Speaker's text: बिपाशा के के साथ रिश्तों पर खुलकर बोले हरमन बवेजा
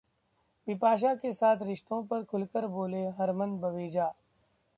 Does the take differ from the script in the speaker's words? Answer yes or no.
yes